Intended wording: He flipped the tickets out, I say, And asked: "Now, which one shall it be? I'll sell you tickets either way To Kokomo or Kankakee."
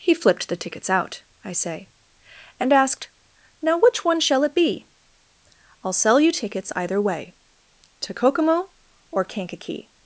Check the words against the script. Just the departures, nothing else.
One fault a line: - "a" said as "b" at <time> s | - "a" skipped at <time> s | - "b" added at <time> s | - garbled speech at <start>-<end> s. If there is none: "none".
none